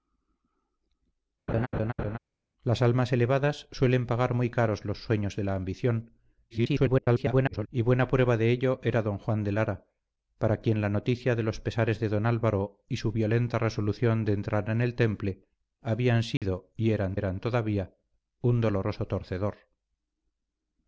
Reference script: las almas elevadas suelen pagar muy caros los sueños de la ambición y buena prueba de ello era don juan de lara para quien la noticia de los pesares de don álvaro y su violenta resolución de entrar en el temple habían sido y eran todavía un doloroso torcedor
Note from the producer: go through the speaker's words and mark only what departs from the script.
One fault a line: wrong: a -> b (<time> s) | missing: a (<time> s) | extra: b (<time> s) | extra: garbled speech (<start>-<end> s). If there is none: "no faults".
extra: garbled speech (6.5-7.7 s)
extra: eran (17.1 s)